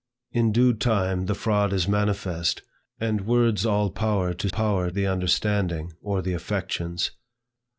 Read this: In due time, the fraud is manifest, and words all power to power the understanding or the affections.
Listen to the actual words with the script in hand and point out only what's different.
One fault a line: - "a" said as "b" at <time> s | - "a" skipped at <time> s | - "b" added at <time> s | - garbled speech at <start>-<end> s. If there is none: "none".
none